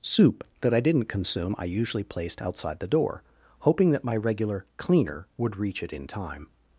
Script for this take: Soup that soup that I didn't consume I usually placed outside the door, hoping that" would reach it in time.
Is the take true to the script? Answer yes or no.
no